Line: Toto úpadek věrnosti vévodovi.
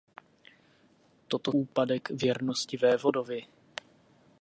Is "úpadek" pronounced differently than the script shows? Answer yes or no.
no